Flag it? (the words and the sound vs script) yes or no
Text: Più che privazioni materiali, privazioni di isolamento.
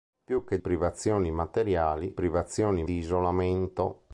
no